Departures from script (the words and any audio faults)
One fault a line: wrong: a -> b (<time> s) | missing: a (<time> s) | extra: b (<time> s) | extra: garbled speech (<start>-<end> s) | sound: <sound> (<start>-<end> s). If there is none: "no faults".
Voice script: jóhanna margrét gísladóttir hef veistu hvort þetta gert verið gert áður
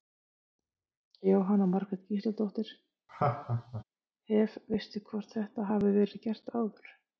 sound: laugh (3.1-3.8 s)
wrong: gert -> hafi (5.7 s)